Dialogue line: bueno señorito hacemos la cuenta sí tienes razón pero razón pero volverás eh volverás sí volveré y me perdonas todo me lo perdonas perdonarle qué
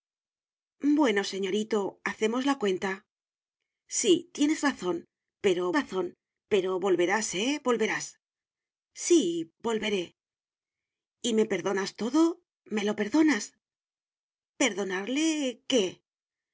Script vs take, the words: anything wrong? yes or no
no